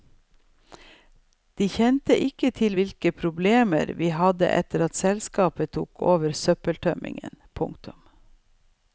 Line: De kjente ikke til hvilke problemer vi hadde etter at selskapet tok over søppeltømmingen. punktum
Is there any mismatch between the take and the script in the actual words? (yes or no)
no